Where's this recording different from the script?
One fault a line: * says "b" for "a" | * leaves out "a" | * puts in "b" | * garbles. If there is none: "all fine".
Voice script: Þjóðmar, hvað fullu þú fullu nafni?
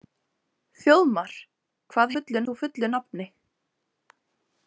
all fine